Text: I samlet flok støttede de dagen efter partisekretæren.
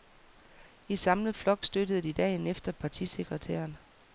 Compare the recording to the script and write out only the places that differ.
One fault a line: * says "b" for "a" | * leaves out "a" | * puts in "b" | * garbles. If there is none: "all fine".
all fine